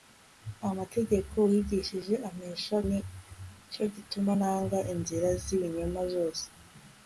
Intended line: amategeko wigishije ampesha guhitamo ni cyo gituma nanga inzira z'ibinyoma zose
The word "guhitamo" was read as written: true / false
false